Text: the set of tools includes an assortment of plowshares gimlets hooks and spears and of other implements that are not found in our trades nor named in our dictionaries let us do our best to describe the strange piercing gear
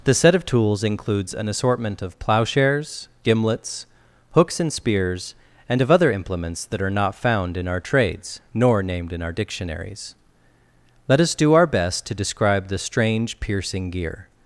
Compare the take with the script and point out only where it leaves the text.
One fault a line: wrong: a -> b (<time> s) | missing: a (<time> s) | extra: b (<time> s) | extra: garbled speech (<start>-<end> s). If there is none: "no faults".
no faults